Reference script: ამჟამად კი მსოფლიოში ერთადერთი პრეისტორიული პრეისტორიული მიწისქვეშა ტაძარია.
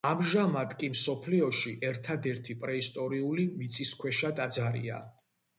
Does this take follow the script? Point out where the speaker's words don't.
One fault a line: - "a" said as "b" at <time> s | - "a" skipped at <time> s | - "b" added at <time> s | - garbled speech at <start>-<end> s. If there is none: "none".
- "პრეისტორიული" skipped at 3.5 s